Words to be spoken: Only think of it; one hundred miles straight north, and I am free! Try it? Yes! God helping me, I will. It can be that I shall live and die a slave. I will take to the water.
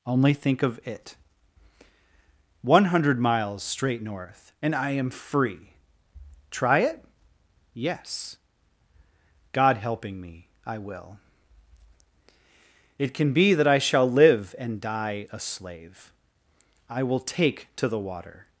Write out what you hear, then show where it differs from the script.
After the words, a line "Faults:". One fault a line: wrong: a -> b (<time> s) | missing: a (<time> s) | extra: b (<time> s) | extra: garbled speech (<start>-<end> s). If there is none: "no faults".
Only think of it; one hundred miles straight north, and I am free! Try it? Yes! God helping me, I will. It can be that I shall live and die a slave. I will take to the water.
Faults:
no faults